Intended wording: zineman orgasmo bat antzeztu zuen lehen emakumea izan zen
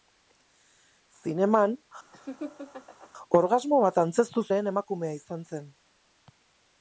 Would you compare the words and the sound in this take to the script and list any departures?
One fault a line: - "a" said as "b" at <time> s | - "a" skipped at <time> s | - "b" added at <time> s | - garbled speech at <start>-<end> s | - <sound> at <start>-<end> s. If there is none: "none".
- laugh at 2.1-3.1 s
- "zuen" skipped at 4.5 s